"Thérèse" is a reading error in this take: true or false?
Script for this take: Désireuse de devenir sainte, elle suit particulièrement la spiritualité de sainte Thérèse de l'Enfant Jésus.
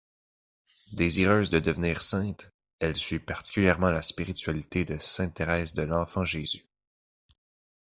false